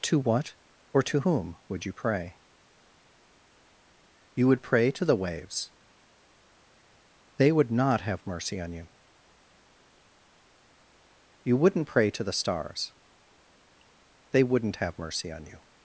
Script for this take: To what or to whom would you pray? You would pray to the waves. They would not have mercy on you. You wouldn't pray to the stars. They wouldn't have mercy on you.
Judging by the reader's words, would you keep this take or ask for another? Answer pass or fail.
pass